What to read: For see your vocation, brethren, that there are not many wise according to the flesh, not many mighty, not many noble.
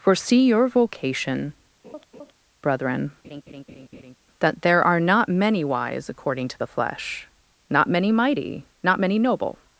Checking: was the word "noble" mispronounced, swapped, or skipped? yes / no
no